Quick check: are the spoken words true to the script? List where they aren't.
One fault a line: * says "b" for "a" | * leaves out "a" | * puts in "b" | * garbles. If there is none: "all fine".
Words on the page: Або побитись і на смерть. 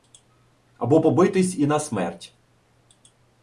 all fine